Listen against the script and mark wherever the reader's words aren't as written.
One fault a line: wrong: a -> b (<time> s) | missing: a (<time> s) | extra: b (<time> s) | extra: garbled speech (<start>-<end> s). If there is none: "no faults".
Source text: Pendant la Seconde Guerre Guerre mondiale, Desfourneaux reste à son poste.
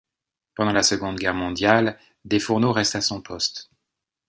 missing: Guerre (1.3 s)